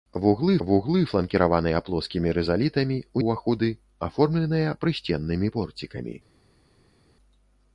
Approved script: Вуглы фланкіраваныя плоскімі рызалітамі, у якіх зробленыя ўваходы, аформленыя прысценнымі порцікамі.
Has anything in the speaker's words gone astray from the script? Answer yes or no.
yes